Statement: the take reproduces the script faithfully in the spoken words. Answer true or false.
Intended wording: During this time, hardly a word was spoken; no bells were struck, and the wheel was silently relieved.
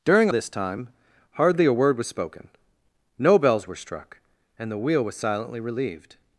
true